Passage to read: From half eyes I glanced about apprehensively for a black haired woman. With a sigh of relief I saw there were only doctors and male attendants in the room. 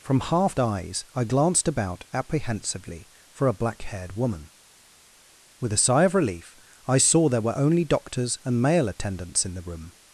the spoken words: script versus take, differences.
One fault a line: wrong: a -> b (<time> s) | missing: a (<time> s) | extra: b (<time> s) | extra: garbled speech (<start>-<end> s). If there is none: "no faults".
no faults